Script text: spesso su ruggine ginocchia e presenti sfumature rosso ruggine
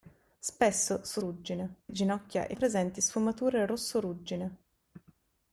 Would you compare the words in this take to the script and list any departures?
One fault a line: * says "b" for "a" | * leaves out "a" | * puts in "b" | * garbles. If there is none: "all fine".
all fine